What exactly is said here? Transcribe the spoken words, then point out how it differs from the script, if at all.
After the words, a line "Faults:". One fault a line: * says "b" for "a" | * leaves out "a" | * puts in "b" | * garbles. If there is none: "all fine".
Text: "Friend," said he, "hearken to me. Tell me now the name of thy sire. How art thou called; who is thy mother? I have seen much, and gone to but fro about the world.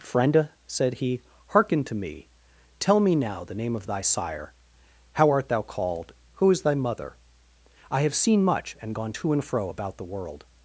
"Friend," said he, "hearken to me. Tell me now the name of thy sire. How art thou called; who is thy mother? I have seen much, and gone to and fro about the world.
Faults:
* says "and" for "but"